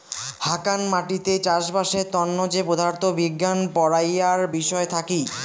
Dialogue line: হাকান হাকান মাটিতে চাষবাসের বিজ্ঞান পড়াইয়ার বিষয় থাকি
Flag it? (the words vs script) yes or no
yes